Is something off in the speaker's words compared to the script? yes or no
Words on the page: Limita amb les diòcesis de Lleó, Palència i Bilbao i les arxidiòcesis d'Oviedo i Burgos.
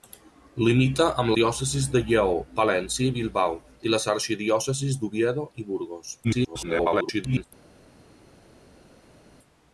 yes